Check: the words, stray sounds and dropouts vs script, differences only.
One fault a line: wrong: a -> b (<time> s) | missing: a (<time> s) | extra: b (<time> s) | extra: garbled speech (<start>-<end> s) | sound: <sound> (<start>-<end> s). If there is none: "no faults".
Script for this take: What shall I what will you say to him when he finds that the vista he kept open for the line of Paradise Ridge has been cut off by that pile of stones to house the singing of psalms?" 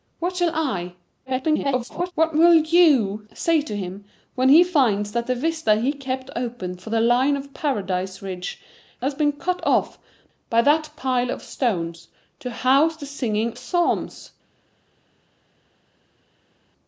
extra: garbled speech (1.3-2.1 s)
missing: of (13.5 s)